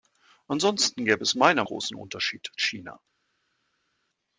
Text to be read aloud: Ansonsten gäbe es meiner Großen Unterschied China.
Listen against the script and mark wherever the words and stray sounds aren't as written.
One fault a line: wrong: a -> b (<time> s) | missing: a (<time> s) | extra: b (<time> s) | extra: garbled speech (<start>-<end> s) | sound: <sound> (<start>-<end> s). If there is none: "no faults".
no faults